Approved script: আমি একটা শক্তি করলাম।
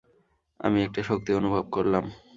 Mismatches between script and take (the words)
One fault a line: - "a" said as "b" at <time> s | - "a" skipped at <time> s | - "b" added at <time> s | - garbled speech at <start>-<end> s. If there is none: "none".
- "অনুভব" added at 1.3 s